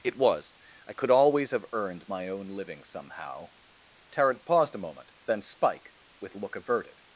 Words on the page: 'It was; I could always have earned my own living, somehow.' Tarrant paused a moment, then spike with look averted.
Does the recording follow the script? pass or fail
pass